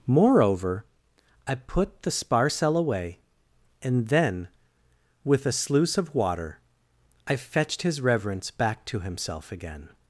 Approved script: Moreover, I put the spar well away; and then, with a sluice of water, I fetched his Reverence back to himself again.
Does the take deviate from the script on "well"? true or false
true